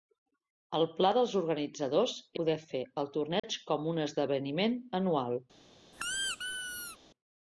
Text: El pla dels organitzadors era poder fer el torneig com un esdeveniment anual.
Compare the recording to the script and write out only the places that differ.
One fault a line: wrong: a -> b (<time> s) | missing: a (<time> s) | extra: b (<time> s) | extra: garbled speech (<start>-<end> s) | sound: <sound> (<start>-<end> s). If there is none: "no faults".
missing: era (2.1 s)
sound: dropout (3.4-3.4 s)
sound: squeak (5.9-7.0 s)